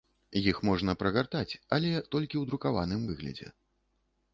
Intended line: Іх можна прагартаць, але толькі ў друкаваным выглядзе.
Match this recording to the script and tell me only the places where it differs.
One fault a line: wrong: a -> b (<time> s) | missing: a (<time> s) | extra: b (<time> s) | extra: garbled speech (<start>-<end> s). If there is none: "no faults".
no faults